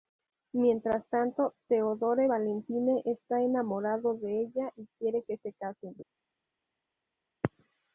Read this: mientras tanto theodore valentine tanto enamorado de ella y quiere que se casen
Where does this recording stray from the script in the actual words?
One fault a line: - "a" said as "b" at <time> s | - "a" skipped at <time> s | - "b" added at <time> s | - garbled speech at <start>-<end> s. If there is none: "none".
- "tanto" said as "está" at 3.0 s